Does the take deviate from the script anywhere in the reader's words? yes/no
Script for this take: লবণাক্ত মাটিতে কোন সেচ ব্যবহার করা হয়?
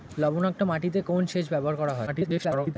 yes